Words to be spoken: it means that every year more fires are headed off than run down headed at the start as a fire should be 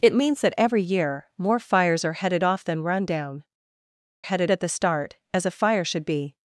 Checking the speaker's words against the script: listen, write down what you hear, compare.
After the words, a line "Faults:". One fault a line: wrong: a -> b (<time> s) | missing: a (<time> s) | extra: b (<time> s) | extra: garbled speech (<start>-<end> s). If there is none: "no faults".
it means that every year more fires are headed off than run down headed at the start as a fire should be
Faults:
no faults